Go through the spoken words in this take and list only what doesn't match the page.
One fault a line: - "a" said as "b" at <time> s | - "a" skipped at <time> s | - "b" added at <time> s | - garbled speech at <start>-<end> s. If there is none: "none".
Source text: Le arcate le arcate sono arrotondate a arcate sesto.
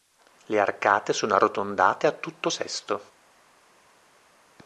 - "le arcate" skipped at 1.1 s
- "arcate" said as "tutto" at 2.1 s